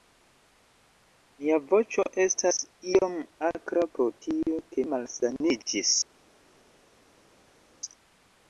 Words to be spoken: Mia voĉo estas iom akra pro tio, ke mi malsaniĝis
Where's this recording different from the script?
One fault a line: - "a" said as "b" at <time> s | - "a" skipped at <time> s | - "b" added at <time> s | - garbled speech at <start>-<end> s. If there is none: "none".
- "mi" skipped at 4.9 s